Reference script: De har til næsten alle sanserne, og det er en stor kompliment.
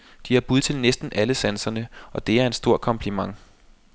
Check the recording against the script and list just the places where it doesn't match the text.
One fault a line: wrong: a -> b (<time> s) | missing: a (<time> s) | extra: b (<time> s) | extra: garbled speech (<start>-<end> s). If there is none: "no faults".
extra: bud (0.4 s)